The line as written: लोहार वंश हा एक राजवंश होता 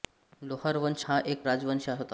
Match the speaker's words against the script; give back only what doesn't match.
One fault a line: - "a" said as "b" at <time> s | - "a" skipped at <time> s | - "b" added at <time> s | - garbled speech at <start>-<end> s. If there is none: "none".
none